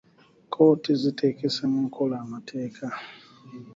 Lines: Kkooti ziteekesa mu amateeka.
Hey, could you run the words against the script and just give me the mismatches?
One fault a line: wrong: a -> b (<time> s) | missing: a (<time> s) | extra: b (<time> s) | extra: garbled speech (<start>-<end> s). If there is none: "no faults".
extra: nkola (1.9 s)